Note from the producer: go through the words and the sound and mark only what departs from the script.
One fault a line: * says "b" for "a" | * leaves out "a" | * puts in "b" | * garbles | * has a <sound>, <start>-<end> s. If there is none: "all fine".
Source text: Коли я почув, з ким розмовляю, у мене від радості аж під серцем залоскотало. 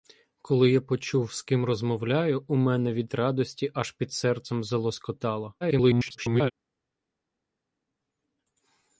* garbles